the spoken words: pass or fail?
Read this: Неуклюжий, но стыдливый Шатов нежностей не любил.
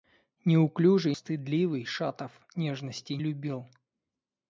fail